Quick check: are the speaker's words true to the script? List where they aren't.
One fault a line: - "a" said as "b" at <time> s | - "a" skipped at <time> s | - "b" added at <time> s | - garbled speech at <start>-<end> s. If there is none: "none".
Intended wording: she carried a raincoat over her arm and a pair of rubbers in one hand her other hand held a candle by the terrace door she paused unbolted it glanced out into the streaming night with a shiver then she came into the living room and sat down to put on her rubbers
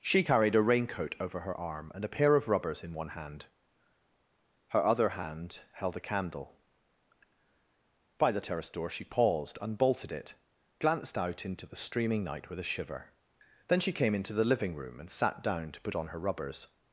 none